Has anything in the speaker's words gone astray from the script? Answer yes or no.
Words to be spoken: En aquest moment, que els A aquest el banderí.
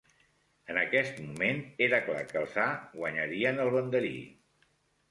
yes